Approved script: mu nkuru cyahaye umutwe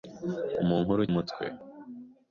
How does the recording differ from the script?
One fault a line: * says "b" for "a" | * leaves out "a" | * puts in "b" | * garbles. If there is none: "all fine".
* leaves out "cyahaye"